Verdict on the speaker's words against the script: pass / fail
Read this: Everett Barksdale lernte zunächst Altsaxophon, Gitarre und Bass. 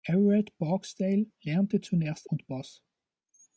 fail